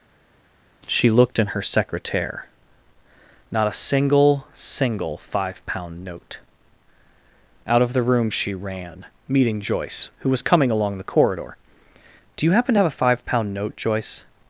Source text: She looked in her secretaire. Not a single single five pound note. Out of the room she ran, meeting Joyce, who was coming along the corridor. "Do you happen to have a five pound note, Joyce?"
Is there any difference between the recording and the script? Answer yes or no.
no